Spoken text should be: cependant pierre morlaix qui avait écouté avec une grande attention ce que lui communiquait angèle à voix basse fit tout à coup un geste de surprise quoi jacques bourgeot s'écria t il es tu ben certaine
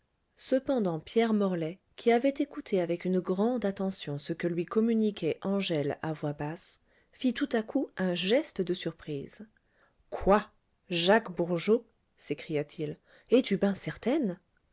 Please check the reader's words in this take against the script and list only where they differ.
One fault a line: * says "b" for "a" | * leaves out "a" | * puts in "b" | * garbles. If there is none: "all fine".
all fine